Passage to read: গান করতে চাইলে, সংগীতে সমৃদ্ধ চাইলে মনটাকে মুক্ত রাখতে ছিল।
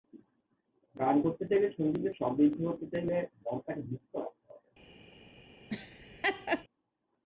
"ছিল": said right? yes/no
no